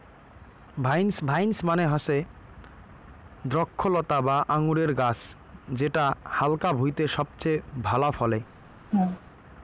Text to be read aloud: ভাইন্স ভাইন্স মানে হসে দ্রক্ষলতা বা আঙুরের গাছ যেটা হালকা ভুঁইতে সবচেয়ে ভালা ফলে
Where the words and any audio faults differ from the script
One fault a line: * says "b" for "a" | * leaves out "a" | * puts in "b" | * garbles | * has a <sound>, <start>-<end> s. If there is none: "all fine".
* has a laugh, 8.9-9.2 s